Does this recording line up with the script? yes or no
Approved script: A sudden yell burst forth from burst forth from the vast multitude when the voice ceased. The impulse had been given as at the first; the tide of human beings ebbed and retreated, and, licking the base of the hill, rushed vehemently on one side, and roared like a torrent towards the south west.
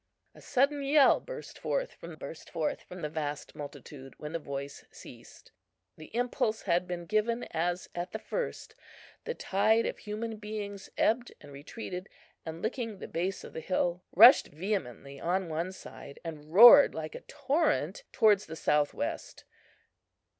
yes